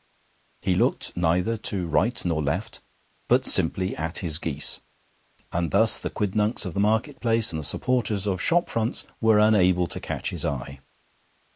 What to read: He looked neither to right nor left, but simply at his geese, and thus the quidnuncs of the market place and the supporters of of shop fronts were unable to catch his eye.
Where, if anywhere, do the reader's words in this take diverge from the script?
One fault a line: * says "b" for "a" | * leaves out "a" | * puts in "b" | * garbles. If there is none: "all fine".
* leaves out "of"